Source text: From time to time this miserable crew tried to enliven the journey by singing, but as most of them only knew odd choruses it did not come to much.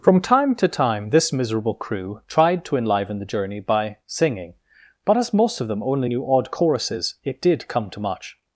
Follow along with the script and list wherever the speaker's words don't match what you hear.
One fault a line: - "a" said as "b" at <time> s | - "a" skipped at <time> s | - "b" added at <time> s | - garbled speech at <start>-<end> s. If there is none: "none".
- "not" skipped at 7.7 s